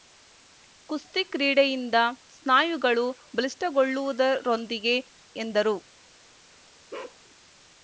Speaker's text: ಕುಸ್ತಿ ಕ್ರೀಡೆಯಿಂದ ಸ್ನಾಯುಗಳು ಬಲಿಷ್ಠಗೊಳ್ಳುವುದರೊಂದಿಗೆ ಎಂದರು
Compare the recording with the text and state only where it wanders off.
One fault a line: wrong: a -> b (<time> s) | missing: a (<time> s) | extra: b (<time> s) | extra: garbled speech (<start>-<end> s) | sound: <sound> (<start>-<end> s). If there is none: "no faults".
sound: bark (6.9-7.2 s)